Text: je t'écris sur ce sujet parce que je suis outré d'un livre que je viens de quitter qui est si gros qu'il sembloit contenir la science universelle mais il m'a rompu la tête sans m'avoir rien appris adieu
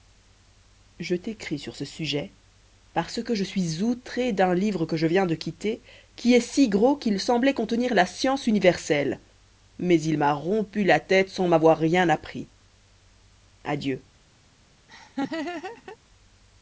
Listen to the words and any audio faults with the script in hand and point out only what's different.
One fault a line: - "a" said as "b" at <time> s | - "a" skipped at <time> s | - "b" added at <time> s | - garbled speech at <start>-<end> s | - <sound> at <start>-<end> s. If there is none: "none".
- laugh at 14.9-16.0 s